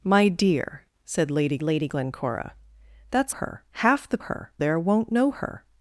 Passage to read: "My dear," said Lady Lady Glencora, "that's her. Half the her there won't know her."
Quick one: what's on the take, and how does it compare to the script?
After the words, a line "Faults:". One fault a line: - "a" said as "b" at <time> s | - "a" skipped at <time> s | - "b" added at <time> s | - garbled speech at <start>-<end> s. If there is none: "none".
"My dear," said Lady Lady Glencora, "that's her. Half the her there won't know her."
Faults:
none